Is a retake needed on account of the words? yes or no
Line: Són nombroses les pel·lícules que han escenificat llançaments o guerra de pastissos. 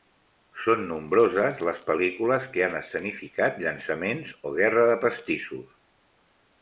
no